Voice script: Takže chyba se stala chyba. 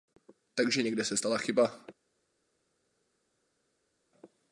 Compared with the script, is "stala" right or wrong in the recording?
right